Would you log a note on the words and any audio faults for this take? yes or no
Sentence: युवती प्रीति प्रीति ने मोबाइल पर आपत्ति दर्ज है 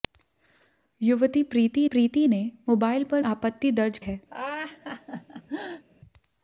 yes